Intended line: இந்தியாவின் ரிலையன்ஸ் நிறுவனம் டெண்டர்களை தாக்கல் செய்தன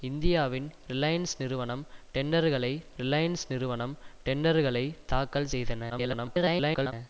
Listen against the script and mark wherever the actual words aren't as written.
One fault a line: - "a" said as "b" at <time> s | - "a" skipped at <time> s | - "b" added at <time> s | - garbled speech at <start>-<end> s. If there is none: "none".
- "ரிலையன்ஸ் நிறுவனம் டெண்டர்களை" added at 3.0 s
- garbled speech at 5.9-6.9 s